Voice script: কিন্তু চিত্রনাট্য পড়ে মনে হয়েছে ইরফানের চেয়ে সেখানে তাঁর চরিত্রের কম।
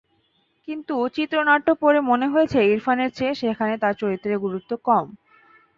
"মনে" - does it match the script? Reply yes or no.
yes